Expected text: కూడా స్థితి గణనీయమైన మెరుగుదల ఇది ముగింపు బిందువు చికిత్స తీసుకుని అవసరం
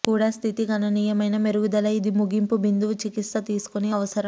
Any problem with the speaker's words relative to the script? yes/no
no